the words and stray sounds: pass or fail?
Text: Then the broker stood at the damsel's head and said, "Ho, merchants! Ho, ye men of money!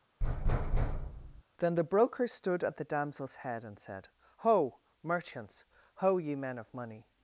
fail